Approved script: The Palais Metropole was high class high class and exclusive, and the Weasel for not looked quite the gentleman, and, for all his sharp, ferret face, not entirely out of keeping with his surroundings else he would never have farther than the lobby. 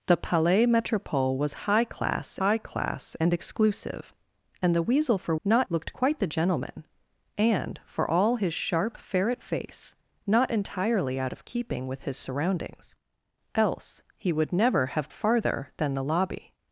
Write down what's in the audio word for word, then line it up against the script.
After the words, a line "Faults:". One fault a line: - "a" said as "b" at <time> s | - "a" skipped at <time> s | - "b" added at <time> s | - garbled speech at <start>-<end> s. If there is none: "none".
The Palais Metropole was high class high class and exclusive, and the Weasel for not looked quite the gentleman, and, for all his sharp, ferret face, not entirely out of keeping with his surroundings else he would never have farther than the lobby.
Faults:
none